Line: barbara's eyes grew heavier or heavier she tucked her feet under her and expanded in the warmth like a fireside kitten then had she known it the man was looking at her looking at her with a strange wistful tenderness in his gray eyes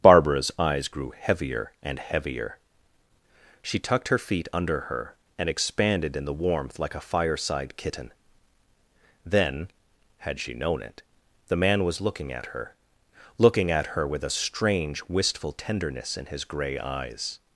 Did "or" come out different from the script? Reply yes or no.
yes